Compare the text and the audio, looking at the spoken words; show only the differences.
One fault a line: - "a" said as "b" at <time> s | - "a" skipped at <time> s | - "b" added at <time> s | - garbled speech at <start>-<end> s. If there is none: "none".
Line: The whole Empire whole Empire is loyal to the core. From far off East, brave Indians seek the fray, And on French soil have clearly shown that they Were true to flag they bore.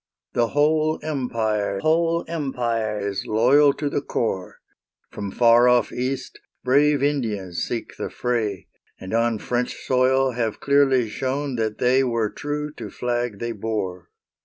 none